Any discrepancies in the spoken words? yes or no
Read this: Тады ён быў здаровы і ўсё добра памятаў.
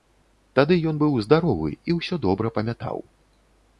no